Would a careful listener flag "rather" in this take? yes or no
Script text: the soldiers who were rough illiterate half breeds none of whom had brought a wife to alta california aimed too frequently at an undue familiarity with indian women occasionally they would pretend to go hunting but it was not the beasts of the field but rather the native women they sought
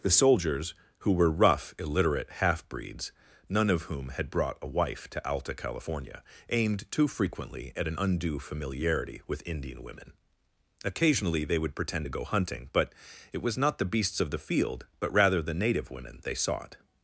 no